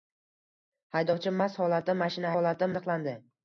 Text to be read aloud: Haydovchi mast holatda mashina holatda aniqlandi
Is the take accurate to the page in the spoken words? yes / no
yes